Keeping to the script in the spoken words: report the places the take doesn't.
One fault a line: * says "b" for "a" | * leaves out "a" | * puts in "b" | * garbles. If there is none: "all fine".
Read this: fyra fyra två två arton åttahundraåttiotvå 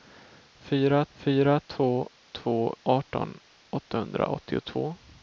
all fine